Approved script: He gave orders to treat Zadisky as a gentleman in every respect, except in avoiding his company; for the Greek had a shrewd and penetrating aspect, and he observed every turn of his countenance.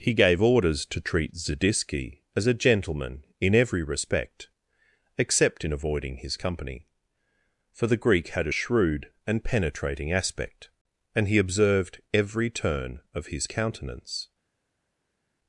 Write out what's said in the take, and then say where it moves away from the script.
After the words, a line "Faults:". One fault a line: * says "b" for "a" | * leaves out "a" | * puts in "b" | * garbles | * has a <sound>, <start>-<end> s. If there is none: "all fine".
He gave orders to treat Zadisky as a gentleman in every respect, except in avoiding his company; for the Greek had a shrewd and penetrating aspect, and he observed every turn of his countenance.
Faults:
all fine